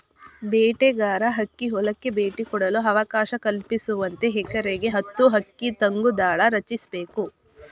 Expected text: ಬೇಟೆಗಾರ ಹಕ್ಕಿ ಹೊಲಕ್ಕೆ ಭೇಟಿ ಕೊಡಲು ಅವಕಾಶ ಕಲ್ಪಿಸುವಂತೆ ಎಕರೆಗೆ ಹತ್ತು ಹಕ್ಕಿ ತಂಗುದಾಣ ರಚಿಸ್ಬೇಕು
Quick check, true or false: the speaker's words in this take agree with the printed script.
true